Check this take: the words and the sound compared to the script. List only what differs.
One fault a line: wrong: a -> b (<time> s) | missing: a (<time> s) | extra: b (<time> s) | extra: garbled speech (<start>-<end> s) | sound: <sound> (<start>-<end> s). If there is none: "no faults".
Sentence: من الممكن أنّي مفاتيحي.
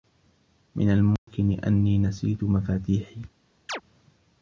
sound: dropout (1.2-1.3 s)
extra: نسيت (2.0 s)
sound: chirp (3.7-3.8 s)